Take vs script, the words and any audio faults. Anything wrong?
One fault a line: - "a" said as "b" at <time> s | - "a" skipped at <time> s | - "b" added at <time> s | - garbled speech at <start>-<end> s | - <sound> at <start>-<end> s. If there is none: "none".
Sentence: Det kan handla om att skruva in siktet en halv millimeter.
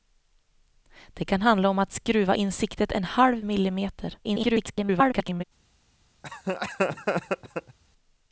- garbled speech at 4.2-5.4 s
- laugh at 6.2-7.8 s